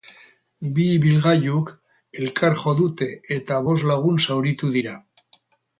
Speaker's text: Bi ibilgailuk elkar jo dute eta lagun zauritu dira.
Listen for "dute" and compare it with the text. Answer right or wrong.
right